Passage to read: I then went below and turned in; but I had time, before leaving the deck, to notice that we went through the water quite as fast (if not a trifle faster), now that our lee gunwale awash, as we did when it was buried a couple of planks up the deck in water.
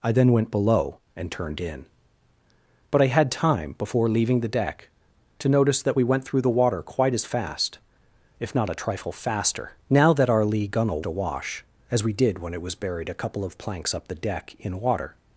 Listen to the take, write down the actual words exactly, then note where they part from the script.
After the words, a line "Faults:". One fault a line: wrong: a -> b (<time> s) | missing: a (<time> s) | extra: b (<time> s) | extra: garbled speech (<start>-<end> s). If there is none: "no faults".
I then went below and turned in; but I had time, before leaving the deck, to notice that we went through the water quite as fast (if not a trifle faster), now that our lee gunwale awash, as we did when it was buried a couple of planks up the deck in water.
Faults:
no faults